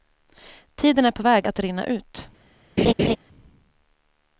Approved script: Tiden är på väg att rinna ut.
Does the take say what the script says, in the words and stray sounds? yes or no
no